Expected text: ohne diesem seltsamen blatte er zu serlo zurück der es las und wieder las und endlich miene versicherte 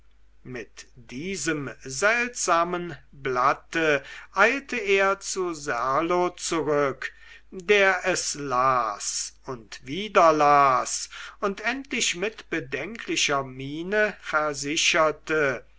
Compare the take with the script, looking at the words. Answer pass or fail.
fail